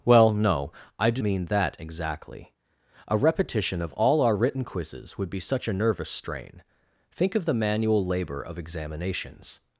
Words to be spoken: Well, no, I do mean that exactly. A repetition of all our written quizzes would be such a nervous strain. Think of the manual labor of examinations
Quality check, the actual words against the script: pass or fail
pass